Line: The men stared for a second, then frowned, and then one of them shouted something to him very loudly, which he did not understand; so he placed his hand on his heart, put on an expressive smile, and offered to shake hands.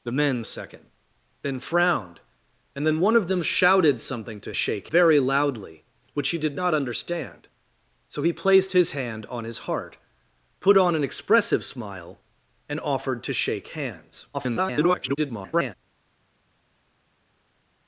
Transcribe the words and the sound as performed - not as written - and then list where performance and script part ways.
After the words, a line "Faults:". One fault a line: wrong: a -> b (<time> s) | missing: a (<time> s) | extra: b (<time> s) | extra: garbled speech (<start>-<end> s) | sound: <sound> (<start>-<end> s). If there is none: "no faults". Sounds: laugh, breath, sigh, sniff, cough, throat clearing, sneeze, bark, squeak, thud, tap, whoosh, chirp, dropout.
The men a second, then frowned, and then one of them shouted something to shake very loudly, which he did not understand; so he placed his hand on his heart, put on an expressive smile, and offered to shake hands. [garbled]
Faults:
missing: stared for (0.4 s)
wrong: him -> shake (4.5 s)
extra: garbled speech (14.3-15.7 s)